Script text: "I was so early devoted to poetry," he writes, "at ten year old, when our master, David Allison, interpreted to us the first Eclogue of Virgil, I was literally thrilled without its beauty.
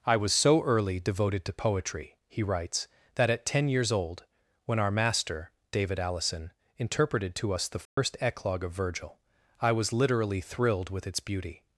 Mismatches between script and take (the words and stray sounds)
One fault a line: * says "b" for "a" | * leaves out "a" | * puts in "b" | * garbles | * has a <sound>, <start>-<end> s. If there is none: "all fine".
* puts in "that"
* says "years" for "year"
* has a dropout, 7.9-8.0 s
* says "with" for "without"